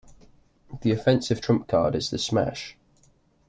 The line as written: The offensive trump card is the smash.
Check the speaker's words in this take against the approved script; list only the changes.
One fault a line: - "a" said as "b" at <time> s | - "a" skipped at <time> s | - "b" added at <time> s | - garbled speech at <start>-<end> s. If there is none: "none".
none